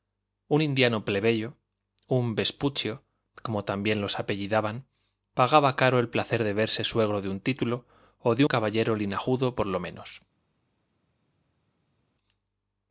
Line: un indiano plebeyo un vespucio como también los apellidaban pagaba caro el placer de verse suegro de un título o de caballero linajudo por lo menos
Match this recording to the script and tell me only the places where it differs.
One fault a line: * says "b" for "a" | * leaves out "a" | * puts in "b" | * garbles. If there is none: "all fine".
all fine